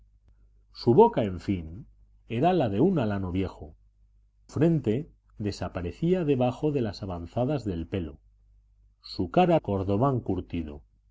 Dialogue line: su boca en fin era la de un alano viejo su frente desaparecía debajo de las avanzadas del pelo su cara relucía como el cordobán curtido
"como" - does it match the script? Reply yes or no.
no